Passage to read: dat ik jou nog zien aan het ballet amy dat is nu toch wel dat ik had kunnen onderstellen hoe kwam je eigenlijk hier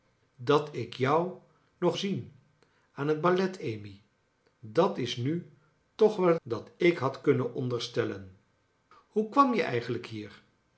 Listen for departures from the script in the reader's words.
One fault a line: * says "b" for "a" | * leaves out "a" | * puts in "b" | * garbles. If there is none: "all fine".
all fine